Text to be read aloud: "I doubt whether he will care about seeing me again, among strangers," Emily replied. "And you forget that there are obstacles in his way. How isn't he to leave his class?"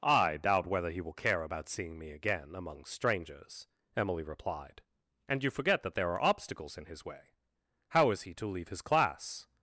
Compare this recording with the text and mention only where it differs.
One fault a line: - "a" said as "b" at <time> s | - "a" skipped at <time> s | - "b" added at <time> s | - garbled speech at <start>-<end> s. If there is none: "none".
- "isn't" said as "is" at 8.1 s